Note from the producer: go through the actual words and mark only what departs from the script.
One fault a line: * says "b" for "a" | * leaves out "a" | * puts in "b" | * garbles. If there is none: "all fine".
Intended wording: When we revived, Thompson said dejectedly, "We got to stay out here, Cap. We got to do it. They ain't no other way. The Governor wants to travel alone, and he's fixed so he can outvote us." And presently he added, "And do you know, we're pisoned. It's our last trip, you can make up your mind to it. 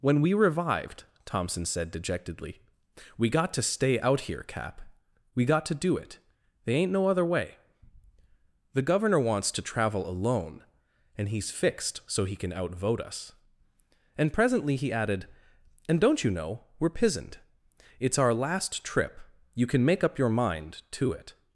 * says "don't" for "do"